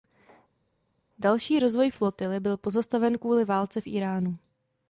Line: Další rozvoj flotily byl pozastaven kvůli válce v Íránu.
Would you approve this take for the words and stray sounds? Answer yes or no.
yes